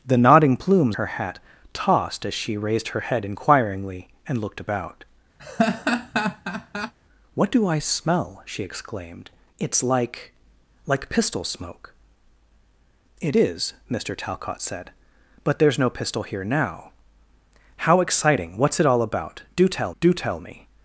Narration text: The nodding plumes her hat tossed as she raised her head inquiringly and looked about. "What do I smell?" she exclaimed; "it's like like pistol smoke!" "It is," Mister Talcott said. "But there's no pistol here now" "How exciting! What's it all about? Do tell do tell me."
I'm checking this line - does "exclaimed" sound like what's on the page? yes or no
yes